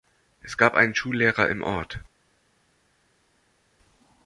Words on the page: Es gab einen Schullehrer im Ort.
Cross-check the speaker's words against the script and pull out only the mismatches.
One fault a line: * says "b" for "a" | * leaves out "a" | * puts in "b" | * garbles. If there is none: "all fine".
all fine